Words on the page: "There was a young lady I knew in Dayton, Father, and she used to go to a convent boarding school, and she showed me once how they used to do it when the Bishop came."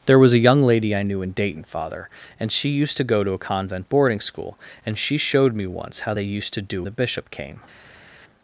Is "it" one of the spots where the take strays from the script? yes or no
yes